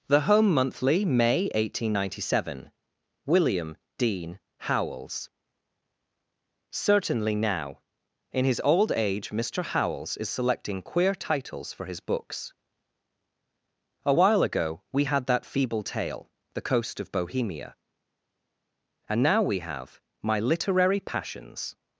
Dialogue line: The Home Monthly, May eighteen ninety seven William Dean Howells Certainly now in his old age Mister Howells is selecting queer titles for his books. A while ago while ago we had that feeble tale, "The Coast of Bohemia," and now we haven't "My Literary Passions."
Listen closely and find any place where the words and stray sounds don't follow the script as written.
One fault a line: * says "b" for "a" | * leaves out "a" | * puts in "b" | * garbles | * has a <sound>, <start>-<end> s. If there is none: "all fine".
* leaves out "while ago"
* says "have" for "haven't"